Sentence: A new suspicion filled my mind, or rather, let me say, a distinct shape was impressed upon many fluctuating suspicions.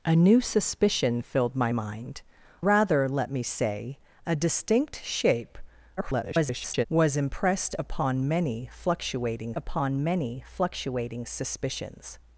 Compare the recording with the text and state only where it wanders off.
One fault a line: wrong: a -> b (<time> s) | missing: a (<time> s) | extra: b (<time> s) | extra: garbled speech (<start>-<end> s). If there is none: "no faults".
missing: or (2.2 s)
extra: garbled speech (6.0-6.9 s)
extra: upon many fluctuating (9.6 s)